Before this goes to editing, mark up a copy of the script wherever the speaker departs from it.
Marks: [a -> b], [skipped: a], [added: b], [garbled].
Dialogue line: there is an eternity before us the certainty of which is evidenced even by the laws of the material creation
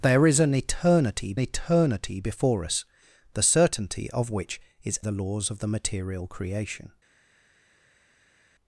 there is an eternity [added: eternity] before us the certainty of which is [skipped: evidenced even by] the laws of the material creation